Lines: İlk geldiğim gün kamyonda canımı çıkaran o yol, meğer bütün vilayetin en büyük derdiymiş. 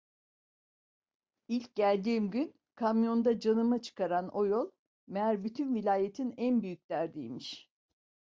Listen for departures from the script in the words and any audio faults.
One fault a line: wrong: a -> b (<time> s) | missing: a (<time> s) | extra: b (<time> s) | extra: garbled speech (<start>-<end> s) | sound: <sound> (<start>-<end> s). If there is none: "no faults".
no faults